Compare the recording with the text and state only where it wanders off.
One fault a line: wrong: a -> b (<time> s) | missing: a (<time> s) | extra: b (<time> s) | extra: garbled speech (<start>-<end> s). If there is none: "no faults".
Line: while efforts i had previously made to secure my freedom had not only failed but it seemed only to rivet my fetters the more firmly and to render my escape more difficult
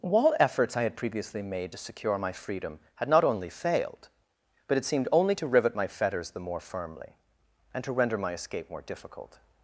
no faults